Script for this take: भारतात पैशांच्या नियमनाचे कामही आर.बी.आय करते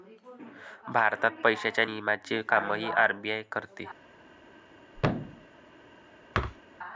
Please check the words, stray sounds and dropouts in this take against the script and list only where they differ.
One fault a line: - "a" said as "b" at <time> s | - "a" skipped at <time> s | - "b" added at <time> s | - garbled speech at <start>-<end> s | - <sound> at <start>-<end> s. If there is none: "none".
- thud at 4.9-5.5 s
- thud at 6.3-6.6 s